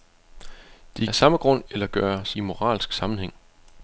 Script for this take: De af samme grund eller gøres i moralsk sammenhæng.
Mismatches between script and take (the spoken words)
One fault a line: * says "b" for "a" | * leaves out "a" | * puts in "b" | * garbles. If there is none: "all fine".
all fine